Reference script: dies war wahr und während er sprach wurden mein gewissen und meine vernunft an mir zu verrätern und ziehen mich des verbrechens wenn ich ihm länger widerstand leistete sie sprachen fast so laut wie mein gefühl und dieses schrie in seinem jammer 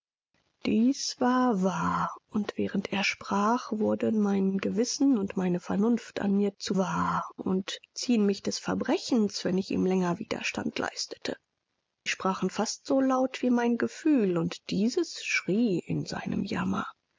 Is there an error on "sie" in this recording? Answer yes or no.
yes